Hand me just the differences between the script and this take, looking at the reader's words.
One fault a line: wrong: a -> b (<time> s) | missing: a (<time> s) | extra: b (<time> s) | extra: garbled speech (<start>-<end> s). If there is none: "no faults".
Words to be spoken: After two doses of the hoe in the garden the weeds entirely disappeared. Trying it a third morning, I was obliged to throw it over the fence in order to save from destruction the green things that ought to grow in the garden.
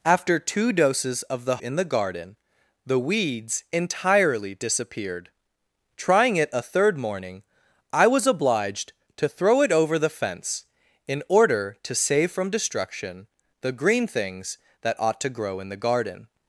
missing: hoe (1.6 s)